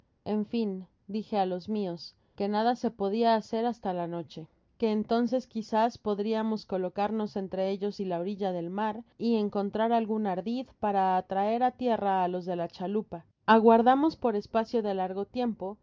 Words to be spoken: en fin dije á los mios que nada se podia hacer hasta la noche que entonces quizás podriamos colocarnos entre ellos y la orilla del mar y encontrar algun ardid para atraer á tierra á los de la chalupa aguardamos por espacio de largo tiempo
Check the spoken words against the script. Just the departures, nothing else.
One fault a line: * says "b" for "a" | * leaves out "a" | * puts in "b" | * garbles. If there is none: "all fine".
all fine